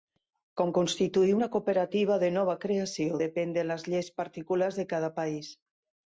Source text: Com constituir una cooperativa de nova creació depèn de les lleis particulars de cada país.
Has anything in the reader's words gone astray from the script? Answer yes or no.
no